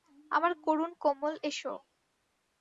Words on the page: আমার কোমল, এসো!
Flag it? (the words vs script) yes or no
yes